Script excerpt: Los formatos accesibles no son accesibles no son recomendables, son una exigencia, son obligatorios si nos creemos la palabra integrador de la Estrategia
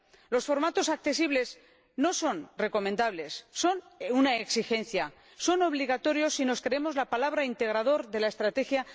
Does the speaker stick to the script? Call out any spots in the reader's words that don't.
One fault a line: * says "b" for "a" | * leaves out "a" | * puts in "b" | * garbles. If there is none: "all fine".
* leaves out "accesibles no son"